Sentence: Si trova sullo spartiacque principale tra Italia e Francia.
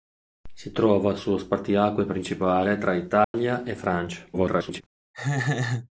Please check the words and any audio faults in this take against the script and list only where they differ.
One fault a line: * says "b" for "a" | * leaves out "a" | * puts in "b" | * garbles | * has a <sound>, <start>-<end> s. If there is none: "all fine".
* has a dropout, 3.2-3.3 s
* garbles
* has a laugh, 5.1-5.9 s